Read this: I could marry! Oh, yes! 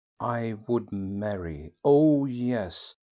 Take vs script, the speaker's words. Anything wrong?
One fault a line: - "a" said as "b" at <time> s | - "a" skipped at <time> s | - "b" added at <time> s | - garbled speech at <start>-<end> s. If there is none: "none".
- "could" said as "would" at 0.7 s